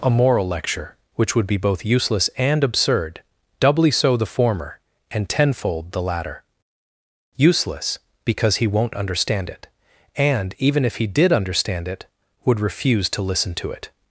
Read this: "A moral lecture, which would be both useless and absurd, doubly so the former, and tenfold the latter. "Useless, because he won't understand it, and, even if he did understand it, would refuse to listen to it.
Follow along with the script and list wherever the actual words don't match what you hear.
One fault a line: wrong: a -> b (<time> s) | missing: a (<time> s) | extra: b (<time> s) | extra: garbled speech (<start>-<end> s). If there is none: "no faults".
no faults